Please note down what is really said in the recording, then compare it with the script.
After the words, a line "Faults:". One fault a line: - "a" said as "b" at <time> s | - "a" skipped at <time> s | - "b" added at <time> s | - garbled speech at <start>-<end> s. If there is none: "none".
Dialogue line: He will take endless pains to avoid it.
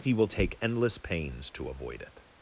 He will take endless pains to avoid it.
Faults:
none